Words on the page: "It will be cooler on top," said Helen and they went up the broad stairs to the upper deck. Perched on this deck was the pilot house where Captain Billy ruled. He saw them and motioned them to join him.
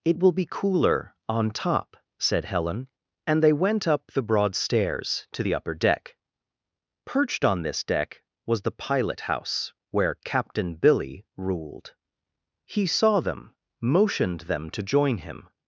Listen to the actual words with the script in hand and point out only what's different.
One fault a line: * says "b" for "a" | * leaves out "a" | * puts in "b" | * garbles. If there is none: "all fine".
* leaves out "and"